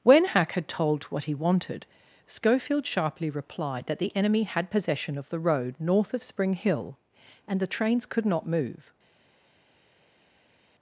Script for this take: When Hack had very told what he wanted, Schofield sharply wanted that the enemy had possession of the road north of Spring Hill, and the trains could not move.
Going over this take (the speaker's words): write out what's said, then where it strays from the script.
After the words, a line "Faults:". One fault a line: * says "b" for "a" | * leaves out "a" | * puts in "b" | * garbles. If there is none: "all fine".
When Hack had told what he wanted, Schofield sharply replied that the enemy had possession of the road north of Spring Hill, and the trains could not move.
Faults:
* leaves out "very"
* says "replied" for "wanted"